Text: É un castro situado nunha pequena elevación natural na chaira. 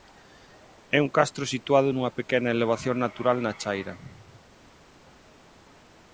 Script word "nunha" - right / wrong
right